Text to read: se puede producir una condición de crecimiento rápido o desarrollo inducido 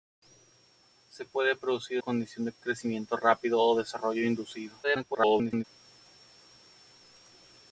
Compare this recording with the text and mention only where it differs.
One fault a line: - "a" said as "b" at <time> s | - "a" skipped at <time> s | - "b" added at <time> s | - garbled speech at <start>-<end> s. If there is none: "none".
- "una" skipped at 2.0 s
- garbled speech at 4.8-5.6 s